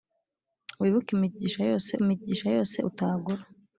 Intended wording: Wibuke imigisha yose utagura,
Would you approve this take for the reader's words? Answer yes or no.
no